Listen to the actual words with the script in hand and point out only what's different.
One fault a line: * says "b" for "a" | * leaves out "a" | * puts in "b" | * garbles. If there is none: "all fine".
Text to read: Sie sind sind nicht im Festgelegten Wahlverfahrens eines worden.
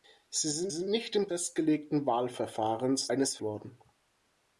all fine